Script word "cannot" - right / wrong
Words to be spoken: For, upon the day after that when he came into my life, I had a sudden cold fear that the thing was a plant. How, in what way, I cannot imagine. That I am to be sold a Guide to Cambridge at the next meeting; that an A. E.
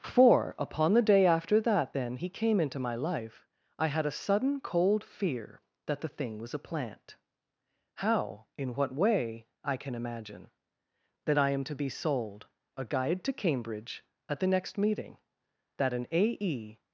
wrong